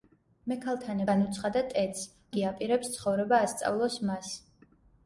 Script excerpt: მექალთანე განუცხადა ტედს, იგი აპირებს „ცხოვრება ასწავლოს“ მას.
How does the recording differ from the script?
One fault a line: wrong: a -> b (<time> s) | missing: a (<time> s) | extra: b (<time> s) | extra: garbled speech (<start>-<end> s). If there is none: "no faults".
no faults